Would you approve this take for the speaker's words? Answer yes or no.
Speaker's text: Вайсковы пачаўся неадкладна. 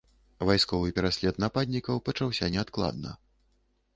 no